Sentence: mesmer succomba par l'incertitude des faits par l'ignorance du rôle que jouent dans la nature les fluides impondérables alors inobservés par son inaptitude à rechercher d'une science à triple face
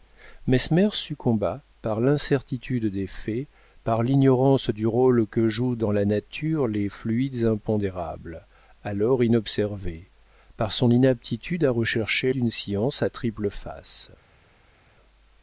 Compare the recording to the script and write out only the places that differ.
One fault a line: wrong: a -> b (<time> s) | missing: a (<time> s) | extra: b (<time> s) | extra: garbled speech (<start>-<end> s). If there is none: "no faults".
no faults